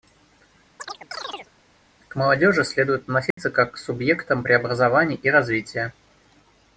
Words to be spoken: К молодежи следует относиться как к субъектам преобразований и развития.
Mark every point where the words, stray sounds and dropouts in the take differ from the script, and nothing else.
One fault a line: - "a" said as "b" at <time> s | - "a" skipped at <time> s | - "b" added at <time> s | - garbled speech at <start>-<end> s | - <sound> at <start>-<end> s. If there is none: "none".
- chirp at 0.8-1.5 s
- dropout at 3.3-3.4 s